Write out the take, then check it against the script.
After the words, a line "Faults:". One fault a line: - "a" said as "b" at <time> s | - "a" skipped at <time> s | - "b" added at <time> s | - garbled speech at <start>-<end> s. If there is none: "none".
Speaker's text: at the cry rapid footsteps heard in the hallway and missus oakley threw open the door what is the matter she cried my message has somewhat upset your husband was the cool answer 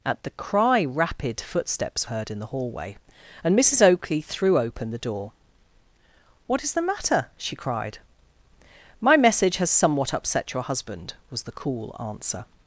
at the cry rapid footsteps heard in the hallway and missus oakley threw open the door what is the matter she cried my message has somewhat upset your husband was the cool answer
Faults:
none